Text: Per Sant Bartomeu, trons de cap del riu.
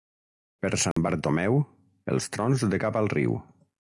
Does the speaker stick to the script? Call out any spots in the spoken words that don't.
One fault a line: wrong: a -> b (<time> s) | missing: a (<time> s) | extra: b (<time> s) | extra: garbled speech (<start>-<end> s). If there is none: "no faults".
extra: els (2.1 s)
wrong: del -> al (3.0 s)